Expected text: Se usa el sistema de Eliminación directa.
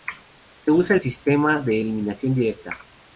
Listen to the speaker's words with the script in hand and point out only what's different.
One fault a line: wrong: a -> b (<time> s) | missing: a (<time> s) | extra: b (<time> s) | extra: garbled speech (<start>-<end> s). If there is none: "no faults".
no faults